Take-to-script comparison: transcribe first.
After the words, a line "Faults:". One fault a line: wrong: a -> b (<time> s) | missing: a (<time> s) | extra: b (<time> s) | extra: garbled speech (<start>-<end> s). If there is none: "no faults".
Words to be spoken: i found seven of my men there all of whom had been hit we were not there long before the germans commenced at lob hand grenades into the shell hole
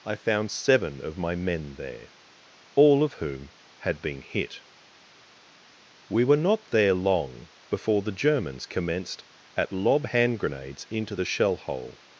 i found seven of my men there all of whom had been hit we were not there long before the germans commenced at lob hand grenades into the shell hole
Faults:
no faults